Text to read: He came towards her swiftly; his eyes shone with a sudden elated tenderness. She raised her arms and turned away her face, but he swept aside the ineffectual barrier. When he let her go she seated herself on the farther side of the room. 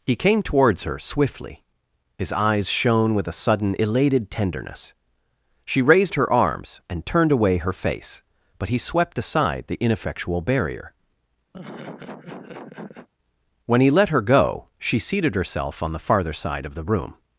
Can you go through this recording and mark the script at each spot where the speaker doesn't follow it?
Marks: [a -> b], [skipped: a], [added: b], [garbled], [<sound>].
He came towards her swiftly; his eyes shone with a sudden elated tenderness. She raised her arms and turned away her face, but he swept aside the ineffectual barrier. [laugh] When he let her go she seated herself on the farther side of the room.